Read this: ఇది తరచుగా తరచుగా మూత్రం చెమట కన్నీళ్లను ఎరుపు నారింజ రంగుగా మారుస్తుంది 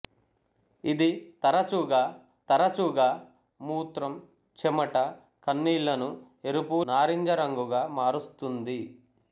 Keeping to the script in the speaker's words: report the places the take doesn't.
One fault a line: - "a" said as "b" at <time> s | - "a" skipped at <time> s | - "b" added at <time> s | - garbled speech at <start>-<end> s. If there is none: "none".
none